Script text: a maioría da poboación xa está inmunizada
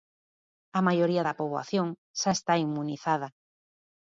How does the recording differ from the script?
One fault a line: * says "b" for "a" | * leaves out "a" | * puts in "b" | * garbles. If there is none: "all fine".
all fine